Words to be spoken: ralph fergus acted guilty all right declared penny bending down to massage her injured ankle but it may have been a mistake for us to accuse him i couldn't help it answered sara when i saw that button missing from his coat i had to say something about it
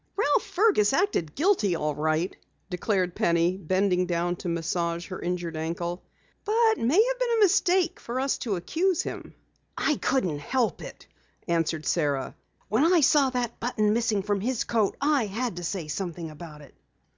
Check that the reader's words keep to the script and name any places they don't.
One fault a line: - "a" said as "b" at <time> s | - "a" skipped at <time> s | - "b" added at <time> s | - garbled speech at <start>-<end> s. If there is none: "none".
- "it" skipped at 6.8 s